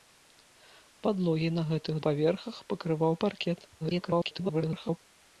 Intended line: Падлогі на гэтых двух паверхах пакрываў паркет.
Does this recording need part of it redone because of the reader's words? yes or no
yes